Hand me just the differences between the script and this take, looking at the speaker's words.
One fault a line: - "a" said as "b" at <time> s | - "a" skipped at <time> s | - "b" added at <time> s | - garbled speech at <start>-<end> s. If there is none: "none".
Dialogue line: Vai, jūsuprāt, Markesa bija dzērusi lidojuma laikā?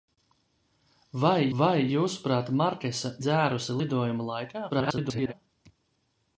- "vai" added at 1.6 s
- "bija" skipped at 3.1 s
- garbled speech at 4.7-5.3 s